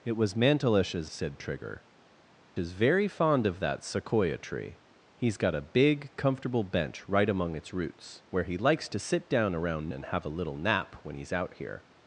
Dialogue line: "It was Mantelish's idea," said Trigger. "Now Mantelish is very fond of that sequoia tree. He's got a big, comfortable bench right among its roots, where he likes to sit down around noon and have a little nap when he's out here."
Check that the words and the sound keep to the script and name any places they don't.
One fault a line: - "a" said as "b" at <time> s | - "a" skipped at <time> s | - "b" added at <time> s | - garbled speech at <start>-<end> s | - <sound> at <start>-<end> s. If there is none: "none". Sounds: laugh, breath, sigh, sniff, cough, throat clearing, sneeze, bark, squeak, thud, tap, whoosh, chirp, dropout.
- "idea" skipped at 1.1 s
- "Now Mantelish" skipped at 1.8 s
- "noon" skipped at 9.9 s